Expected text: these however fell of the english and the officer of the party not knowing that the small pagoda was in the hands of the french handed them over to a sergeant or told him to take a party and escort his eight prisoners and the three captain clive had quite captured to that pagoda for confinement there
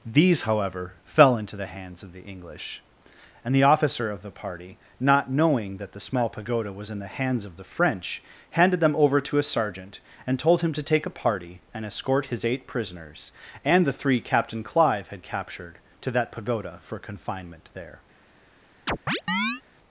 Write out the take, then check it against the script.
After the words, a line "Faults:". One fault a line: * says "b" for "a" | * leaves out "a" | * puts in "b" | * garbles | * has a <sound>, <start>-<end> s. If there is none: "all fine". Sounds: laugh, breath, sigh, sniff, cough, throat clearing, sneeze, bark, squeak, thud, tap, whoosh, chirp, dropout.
these however fell into the hands of the english and the officer of the party not knowing that the small pagoda was in the hands of the french handed them over to a sergeant and told him to take a party and escort his eight prisoners and the three captain clive had captured to that pagoda for confinement there
Faults:
* puts in "into the hands"
* says "and" for "or"
* leaves out "quite"
* has a chirp, 18.9-19.6 s